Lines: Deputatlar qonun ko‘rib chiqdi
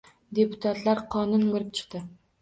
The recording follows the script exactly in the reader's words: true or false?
true